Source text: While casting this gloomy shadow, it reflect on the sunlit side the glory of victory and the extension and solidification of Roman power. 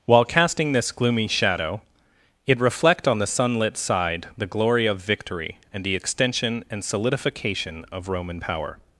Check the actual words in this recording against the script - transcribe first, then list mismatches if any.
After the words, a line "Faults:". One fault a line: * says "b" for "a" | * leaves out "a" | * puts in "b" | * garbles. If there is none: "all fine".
While casting this gloomy shadow, it reflect on the sunlit side the glory of victory and the extension and solidification of Roman power.
Faults:
all fine